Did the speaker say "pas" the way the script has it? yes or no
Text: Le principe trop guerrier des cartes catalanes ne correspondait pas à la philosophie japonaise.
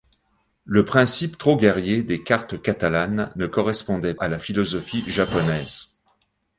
no